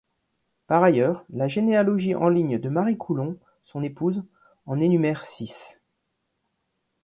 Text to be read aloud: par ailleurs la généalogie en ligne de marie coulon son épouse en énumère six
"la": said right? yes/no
yes